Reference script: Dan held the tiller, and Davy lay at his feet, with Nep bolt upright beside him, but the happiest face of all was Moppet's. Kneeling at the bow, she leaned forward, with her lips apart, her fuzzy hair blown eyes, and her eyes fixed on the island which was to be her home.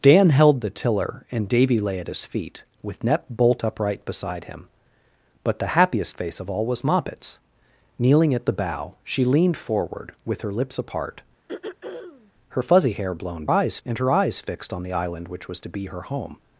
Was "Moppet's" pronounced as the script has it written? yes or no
yes